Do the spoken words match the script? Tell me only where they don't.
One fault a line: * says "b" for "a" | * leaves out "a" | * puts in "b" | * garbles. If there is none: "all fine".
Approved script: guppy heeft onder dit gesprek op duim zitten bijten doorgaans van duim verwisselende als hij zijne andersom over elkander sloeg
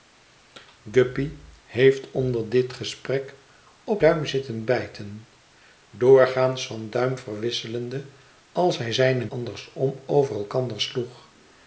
all fine